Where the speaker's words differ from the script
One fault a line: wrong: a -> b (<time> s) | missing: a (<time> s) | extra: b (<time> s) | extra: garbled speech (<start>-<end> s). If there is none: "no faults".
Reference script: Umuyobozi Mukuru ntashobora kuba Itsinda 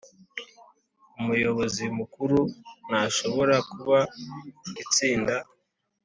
no faults